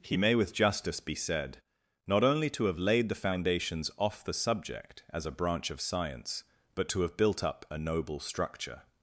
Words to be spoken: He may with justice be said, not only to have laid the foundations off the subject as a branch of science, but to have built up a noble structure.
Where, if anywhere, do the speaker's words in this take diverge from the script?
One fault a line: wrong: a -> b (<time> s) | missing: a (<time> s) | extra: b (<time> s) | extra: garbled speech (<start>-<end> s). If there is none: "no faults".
no faults